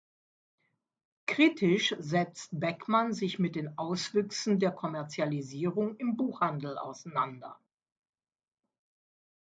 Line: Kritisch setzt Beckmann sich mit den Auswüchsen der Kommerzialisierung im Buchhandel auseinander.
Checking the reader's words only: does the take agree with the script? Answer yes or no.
yes